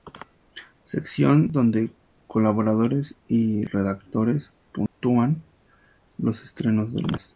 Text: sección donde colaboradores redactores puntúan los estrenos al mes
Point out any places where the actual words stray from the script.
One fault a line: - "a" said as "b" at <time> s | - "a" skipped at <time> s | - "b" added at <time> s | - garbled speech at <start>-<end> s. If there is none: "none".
- "y" added at 3.3 s
- "al" said as "del" at 6.9 s